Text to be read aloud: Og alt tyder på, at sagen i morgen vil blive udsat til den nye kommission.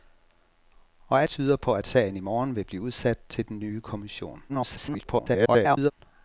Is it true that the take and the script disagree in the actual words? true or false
true